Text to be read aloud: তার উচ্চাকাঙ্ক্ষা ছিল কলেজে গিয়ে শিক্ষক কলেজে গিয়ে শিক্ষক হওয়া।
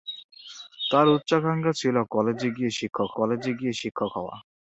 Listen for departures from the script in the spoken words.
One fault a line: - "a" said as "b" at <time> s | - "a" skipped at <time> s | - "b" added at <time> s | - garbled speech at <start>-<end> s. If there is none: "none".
none